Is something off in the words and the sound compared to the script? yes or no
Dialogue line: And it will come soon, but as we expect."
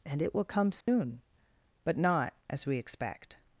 yes